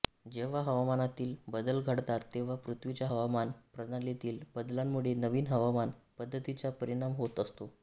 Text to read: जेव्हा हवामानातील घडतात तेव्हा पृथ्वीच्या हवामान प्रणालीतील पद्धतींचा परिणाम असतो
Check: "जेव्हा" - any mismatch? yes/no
no